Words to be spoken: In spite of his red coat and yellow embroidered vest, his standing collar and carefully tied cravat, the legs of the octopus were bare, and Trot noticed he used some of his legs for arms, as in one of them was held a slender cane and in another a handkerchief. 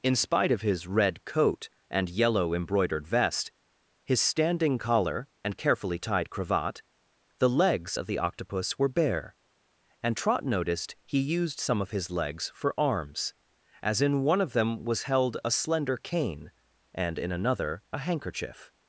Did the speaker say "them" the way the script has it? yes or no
yes